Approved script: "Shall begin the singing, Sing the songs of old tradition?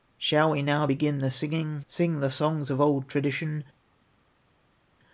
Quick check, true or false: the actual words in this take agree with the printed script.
false